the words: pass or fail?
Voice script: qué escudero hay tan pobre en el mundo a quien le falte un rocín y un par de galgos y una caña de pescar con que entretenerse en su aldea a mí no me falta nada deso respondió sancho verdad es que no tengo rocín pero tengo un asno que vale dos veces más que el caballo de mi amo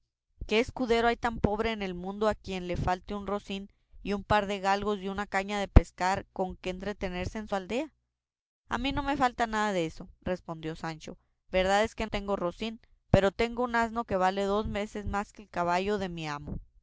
fail